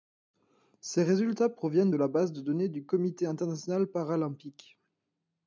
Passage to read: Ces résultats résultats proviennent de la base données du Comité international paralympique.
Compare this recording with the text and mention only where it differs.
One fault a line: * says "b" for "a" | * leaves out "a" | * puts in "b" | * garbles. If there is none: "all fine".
* leaves out "résultats"
* puts in "de"